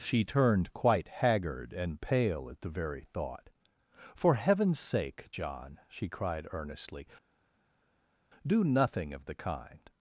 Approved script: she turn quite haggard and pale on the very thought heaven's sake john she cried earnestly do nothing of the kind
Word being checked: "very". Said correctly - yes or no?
yes